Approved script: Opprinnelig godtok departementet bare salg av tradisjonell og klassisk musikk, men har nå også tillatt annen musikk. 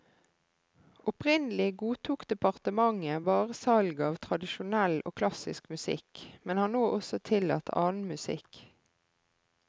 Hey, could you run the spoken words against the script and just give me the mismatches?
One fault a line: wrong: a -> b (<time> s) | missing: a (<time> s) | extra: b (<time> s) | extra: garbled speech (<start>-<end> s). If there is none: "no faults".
no faults